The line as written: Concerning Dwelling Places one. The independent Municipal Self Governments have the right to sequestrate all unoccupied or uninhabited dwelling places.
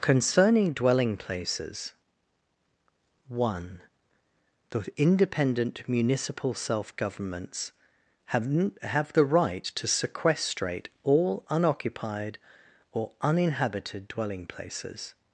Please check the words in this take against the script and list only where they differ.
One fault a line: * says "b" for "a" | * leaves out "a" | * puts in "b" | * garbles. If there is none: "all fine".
* puts in "have"